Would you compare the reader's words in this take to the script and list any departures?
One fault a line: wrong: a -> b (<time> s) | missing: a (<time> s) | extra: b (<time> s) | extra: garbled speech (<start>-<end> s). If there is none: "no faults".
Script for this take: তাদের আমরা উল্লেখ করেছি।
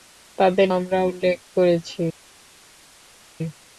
no faults